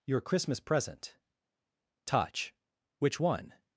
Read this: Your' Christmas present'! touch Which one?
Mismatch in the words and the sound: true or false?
false